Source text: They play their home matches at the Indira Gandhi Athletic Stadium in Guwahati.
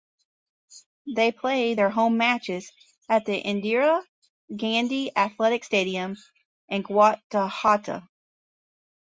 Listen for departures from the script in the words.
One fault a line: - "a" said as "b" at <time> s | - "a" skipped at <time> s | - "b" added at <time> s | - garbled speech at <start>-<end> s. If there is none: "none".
none